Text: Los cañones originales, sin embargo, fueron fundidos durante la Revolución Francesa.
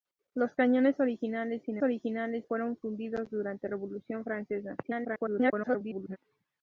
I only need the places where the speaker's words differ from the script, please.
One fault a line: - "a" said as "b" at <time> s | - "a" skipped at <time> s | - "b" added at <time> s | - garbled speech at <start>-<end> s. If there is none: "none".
- "embargo" said as "originales" at 1.8 s
- "la" skipped at 3.7 s
- garbled speech at 4.8-6.2 s